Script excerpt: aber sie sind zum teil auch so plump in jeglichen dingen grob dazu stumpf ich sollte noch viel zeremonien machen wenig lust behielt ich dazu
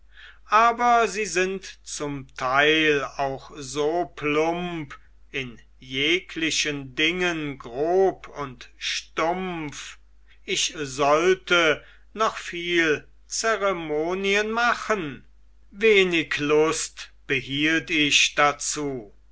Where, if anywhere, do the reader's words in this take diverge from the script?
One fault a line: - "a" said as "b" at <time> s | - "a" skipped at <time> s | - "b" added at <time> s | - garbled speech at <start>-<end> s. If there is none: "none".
- "dazu" said as "und" at 8.3 s